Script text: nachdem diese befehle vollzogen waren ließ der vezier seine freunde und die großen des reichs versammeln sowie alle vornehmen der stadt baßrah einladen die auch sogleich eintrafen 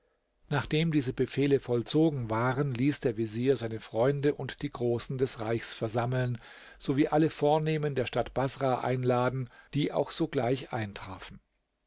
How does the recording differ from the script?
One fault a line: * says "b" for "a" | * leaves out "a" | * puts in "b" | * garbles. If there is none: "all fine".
all fine